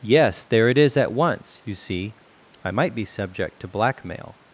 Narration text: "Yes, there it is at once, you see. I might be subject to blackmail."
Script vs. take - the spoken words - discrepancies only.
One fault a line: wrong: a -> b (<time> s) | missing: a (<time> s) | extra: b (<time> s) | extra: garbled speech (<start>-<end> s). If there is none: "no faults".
no faults